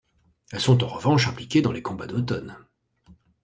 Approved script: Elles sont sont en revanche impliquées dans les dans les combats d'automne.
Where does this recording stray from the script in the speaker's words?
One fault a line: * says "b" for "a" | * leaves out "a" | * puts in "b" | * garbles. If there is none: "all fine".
* leaves out "sont"
* leaves out "dans les"